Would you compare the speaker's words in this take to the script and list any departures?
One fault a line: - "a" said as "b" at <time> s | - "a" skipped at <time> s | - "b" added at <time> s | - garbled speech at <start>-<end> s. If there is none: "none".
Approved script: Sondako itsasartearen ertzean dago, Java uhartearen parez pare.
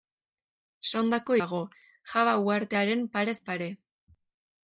- "itsasartearen ertzean" skipped at 1.4 s